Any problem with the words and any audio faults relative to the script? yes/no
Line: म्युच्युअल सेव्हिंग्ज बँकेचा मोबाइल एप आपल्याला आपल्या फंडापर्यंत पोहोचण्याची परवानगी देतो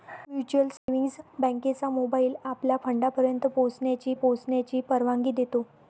yes